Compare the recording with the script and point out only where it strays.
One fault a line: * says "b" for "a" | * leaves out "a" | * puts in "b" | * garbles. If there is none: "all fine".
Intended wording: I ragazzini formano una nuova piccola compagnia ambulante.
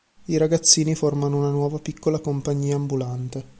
all fine